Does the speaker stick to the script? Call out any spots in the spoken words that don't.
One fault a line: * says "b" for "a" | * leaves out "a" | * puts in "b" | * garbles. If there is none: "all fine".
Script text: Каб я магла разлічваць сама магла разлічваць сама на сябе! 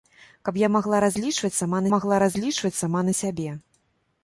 all fine